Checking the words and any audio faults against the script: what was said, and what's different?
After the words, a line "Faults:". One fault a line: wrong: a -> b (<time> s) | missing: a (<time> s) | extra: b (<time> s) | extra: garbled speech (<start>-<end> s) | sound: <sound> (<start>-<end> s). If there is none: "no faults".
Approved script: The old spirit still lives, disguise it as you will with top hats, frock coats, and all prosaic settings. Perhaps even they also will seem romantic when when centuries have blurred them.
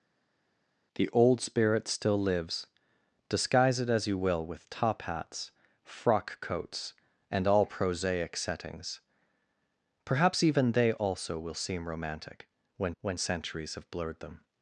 The old spirit still lives, disguise it as you will with top hats, frock coats, and all prosaic settings. Perhaps even they also will seem romantic when when centuries have blurred them.
Faults:
no faults